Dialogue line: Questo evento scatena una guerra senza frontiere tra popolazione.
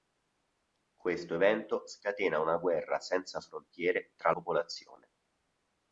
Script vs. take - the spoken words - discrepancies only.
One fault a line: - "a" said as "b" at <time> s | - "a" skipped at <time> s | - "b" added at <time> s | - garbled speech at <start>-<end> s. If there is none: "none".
none